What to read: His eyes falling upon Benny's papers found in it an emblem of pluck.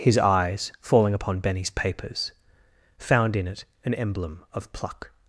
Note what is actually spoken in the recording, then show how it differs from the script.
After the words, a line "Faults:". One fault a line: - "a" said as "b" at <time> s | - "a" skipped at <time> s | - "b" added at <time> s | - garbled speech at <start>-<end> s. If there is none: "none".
His eyes falling upon Benny's papers found in it an emblem of pluck.
Faults:
none